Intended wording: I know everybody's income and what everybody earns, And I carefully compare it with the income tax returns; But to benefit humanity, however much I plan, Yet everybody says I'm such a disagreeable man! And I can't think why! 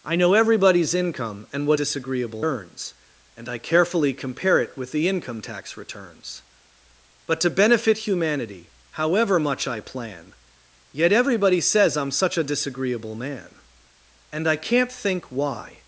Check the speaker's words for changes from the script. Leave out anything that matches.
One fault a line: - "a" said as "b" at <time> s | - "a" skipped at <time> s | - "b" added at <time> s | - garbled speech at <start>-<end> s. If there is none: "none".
- "everybody" said as "disagreeable" at 1.7 s